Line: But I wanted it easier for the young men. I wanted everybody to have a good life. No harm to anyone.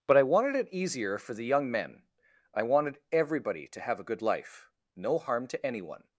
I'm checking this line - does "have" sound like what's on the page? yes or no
yes